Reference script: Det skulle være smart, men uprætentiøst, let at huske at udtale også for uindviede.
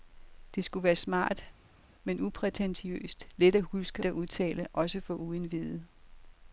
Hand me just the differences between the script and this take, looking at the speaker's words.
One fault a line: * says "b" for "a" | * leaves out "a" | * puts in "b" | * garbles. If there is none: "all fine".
all fine